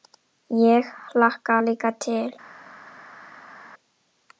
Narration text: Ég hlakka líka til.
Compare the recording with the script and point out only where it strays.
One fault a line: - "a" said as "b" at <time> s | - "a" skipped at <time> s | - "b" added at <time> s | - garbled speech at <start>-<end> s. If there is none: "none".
none